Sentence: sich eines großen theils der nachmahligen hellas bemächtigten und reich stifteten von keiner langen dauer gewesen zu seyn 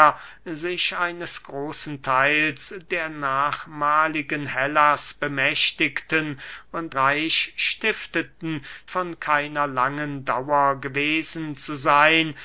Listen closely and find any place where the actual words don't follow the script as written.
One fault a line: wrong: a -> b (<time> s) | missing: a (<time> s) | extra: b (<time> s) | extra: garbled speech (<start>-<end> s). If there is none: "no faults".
no faults